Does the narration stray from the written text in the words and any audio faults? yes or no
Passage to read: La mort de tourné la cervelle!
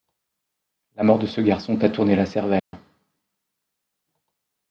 yes